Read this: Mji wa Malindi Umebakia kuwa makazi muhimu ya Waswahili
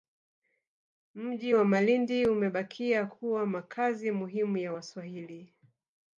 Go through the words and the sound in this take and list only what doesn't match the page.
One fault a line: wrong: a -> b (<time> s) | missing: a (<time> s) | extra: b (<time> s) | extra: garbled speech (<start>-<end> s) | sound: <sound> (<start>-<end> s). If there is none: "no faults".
no faults